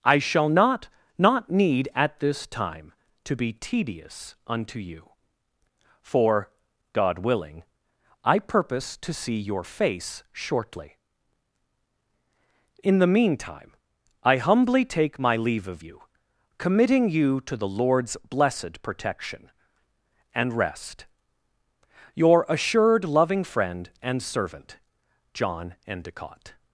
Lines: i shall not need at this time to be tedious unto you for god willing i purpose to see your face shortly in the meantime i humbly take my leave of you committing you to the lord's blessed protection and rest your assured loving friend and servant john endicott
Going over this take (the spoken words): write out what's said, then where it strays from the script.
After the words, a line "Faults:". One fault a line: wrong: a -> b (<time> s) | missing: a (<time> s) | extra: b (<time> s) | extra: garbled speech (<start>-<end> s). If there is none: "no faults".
i shall not not need at this time to be tedious unto you for god willing i purpose to see your face shortly in the meantime i humbly take my leave of you committing you to the lord's blessed protection and rest your assured loving friend and servant john endicott
Faults:
extra: not (1.2 s)